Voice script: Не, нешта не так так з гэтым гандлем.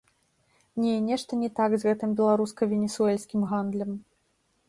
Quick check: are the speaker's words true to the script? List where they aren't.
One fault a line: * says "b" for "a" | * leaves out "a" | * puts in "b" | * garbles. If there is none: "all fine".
* leaves out "так"
* puts in "беларуска венесуэльскім"